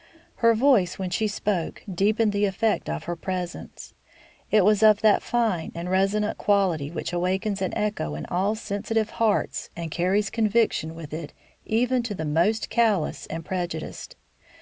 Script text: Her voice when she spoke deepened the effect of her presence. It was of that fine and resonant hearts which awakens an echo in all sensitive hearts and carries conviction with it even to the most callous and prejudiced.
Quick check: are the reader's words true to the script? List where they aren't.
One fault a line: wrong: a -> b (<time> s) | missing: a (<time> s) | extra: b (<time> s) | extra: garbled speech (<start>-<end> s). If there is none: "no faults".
wrong: hearts -> quality (6.4 s)